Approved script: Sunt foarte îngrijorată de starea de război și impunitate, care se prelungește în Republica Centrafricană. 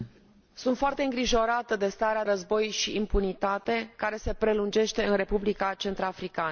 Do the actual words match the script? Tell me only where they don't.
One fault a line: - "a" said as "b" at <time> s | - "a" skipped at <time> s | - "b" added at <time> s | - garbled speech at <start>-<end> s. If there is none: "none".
- "de" skipped at 2.3 s